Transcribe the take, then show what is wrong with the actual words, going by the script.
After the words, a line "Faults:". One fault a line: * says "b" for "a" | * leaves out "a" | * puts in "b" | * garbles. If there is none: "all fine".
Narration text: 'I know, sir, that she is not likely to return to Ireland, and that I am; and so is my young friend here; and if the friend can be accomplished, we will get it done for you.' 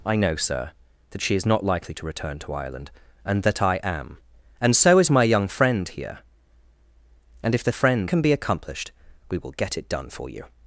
'I know, sir, that she is not likely to return to Ireland, and that I am; and so is my young friend here; and if the friend can be accomplished, we will get it done for you.'
Faults:
all fine